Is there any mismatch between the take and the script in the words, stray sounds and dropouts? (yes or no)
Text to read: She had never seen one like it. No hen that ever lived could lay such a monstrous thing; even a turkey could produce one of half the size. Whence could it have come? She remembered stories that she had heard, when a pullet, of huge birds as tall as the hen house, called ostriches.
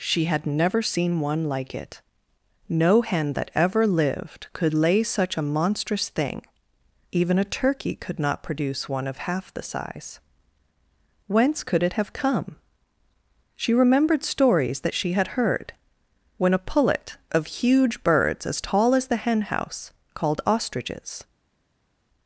yes